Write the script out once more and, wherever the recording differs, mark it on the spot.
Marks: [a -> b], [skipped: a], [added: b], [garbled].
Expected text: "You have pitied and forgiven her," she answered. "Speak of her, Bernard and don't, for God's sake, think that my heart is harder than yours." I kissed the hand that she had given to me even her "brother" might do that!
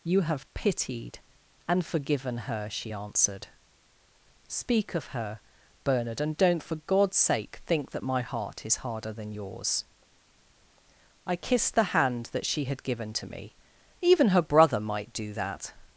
"You have pitied and forgiven her," she answered. "Speak of her, Bernard and don't, for God's sake, think that my heart is harder than yours." I kissed the hand that she had given to me even her "brother" might do that!